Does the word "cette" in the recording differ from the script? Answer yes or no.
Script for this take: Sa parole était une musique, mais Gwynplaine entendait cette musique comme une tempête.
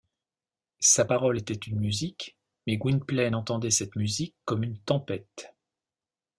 no